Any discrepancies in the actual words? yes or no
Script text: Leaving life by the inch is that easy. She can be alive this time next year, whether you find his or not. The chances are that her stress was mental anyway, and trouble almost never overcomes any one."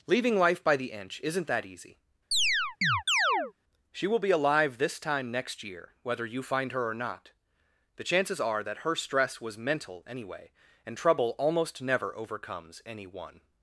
yes